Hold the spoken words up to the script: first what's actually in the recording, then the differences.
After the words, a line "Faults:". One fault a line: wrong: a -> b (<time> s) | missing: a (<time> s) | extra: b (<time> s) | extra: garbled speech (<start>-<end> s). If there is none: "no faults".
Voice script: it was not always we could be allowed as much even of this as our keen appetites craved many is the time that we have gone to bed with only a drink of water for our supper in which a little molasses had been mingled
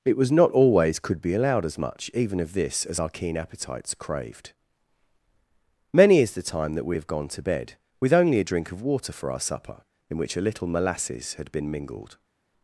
it was not always could be allowed as much even of this as our keen appetites craved many is the time that we have gone to bed with only a drink of water for our supper in which a little molasses had been mingled
Faults:
missing: we (1.0 s)